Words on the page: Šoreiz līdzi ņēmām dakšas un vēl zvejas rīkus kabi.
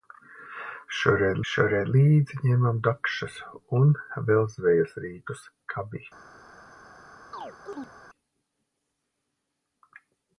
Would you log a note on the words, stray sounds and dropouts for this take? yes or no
yes